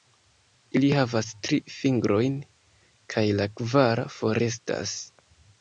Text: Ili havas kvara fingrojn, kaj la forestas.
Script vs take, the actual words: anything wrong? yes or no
yes